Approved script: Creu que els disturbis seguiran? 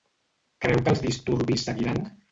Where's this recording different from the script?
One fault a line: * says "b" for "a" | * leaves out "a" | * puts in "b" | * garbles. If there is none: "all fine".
all fine